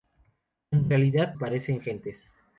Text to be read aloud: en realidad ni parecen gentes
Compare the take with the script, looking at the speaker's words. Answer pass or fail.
fail